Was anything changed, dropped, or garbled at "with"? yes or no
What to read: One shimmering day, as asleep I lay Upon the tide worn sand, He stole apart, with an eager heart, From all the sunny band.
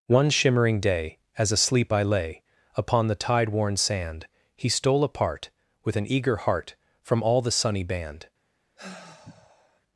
no